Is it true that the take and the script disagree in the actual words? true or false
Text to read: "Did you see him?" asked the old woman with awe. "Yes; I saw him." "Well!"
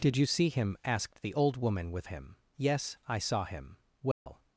true